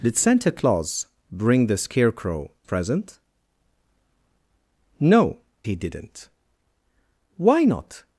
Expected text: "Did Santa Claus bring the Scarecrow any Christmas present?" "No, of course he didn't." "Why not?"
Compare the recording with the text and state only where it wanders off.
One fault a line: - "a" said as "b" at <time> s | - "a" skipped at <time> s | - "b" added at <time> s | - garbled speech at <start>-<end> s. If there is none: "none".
- "any Christmas" skipped at 2.5 s
- "of course" skipped at 5.4 s